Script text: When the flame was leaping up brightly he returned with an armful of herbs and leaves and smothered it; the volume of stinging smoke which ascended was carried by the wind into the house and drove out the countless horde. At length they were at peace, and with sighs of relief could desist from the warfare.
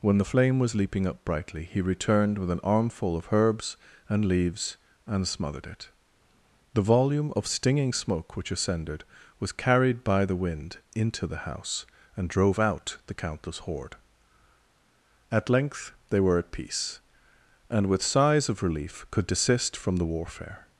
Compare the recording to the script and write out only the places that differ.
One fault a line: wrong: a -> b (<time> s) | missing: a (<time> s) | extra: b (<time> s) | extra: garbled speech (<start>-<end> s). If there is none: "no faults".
no faults